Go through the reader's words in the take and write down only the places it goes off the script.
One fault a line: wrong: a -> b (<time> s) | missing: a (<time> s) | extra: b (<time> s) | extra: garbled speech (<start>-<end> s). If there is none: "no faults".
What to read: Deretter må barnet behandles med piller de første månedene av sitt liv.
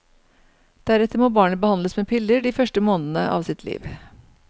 no faults